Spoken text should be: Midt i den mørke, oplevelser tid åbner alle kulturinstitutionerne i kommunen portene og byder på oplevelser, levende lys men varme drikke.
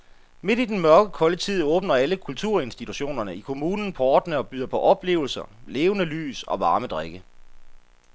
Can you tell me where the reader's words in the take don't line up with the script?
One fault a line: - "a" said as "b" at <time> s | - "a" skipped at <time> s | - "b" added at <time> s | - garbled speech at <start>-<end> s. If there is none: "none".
- "oplevelser" said as "kolde" at 1.1 s
- "men" said as "og" at 6.4 s